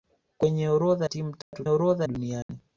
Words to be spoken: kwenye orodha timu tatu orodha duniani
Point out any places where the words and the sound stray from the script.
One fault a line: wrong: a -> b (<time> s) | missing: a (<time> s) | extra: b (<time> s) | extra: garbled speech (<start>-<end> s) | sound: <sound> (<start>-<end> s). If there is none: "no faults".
sound: dropout (1.4-1.5 s)
sound: dropout (2.4-2.5 s)